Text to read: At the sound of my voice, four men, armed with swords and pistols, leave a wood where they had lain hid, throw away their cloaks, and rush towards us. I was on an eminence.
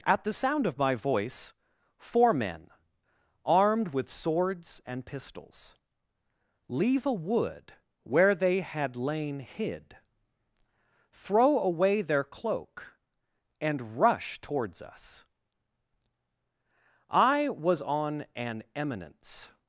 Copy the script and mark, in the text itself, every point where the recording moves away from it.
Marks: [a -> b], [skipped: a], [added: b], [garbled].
At the sound of my voice, four men, armed with swords and pistols, leave a wood where they had lain hid, throw away their [cloaks, -> cloak] and rush towards us. I was on an eminence.